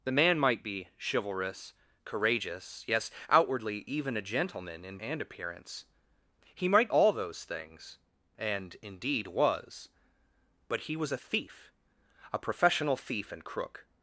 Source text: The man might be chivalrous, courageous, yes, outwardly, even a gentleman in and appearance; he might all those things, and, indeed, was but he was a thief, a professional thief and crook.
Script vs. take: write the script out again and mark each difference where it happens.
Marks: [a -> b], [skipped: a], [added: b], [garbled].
The man might be chivalrous, courageous, yes, outwardly, even a gentleman in and appearance; he might all those things, and, indeed, was but he was a thief, a professional thief and crook.